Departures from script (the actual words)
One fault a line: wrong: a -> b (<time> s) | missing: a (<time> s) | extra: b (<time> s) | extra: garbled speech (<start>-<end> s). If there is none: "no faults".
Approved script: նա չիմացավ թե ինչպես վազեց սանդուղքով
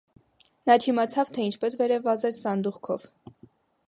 extra: վերև (1.8 s)